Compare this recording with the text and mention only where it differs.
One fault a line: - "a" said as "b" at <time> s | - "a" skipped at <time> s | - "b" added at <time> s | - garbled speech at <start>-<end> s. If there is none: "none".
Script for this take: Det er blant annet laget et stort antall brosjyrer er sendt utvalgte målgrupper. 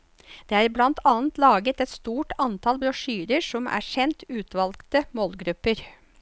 - "som" added at 3.5 s